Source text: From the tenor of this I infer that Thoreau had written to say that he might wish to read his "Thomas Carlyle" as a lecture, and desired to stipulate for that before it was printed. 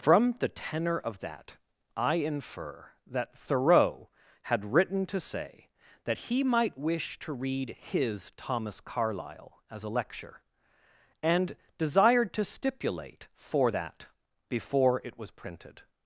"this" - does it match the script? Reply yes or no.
no